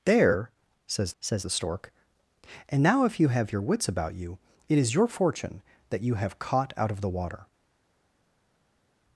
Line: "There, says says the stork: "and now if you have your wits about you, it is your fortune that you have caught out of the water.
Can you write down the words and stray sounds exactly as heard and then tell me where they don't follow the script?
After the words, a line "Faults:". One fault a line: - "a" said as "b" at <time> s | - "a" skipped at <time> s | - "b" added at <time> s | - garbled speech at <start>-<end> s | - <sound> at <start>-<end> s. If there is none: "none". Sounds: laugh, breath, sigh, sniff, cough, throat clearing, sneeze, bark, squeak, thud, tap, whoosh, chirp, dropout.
"There, says says the stork: "and now if you have your wits about you, it is your fortune that you have caught out of the water.
Faults:
none